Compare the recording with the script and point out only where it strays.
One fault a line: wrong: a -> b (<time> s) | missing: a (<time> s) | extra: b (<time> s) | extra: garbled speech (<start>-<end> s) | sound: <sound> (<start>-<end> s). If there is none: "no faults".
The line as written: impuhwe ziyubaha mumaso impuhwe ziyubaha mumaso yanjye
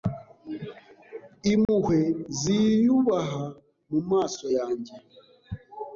sound: dropout (1.6-1.7 s)
missing: impuhwe ziyubaha mumaso (4.5 s)